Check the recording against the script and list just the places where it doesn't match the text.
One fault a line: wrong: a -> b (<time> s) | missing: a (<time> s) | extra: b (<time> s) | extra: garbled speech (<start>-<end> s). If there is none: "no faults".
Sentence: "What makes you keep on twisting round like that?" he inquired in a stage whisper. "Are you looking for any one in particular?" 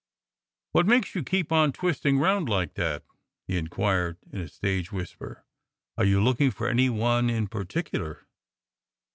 no faults